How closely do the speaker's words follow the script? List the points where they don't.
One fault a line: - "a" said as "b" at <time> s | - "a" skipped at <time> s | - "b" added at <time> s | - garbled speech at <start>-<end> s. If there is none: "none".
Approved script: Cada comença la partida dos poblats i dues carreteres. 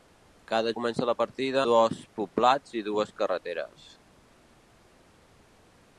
none